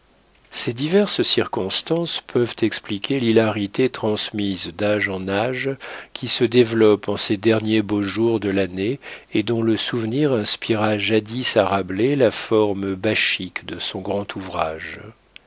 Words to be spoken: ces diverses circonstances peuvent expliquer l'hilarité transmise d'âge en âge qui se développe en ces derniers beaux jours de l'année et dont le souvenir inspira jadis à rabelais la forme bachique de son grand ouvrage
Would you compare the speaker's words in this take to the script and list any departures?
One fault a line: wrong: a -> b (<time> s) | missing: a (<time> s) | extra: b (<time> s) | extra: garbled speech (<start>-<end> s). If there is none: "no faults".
no faults